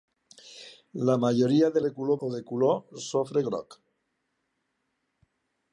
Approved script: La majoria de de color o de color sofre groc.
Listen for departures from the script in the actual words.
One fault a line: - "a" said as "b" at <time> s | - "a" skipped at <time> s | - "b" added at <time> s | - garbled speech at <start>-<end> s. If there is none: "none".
none